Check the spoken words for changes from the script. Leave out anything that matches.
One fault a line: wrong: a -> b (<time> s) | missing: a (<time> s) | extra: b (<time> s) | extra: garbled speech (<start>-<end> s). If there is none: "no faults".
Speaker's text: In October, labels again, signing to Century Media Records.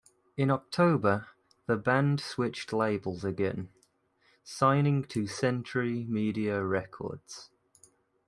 extra: the band switched (1.7 s)